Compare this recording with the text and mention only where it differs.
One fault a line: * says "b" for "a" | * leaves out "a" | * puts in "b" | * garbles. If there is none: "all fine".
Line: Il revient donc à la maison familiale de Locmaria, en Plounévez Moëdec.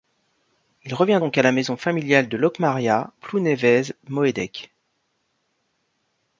* leaves out "en"